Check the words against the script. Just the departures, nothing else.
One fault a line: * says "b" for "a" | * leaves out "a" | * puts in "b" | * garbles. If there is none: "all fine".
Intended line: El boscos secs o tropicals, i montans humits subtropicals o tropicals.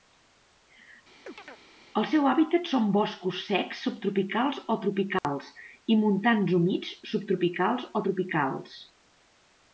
* puts in "seu hàbitat són"
* puts in "subtropicals"